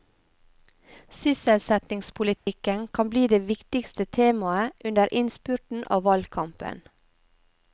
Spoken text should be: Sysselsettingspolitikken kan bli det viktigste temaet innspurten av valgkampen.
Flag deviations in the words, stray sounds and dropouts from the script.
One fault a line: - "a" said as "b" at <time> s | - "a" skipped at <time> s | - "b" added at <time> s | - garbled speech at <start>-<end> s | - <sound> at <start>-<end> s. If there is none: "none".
- dropout at 2.4-2.5 s
- "under" added at 4.8 s